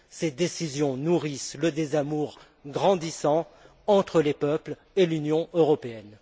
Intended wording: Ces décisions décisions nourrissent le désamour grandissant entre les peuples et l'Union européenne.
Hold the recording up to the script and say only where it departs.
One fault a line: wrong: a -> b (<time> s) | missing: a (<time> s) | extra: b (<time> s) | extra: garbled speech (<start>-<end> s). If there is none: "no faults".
missing: décisions (1.0 s)